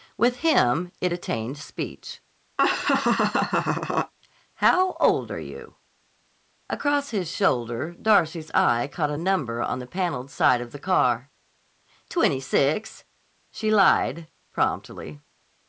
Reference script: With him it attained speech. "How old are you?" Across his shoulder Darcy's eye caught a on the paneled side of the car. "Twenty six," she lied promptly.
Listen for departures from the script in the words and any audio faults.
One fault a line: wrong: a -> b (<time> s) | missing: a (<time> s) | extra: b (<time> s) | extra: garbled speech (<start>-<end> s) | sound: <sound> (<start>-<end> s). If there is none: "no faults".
sound: laugh (2.6-4.1 s)
extra: number (9.1 s)